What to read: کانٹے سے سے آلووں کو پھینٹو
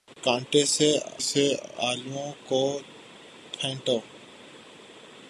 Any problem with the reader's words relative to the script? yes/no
no